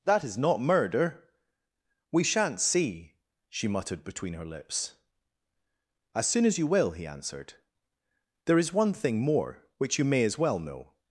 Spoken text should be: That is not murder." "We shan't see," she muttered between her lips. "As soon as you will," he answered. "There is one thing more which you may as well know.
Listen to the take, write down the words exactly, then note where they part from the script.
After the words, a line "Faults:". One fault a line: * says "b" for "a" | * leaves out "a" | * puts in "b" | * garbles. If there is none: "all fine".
That is not murder." "We shan't see," she muttered between her lips. "As soon as you will," he answered. "There is one thing more which you may as well know.
Faults:
all fine